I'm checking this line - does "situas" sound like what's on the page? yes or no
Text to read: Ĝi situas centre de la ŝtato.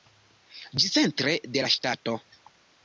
no